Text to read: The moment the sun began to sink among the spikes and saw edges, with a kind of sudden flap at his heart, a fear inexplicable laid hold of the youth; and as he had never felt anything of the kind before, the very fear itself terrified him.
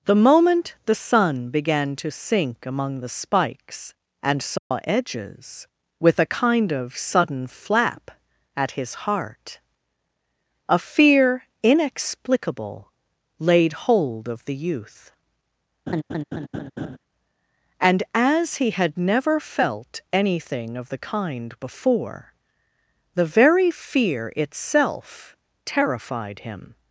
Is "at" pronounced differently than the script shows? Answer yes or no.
no